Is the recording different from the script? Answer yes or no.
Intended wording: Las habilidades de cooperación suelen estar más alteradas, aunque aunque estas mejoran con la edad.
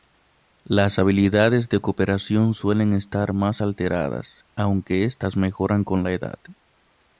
yes